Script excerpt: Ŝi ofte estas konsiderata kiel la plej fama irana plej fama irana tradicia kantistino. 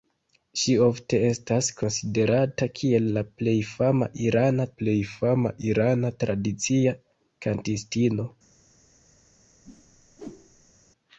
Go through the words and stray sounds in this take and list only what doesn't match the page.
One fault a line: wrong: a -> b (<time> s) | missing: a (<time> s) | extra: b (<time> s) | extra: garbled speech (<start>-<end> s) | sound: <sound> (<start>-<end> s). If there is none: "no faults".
sound: whoosh (9.6-10.7 s)